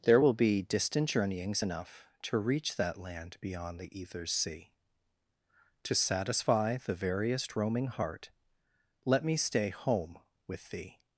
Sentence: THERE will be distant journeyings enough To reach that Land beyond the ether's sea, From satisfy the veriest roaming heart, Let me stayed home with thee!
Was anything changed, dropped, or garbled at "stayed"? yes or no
yes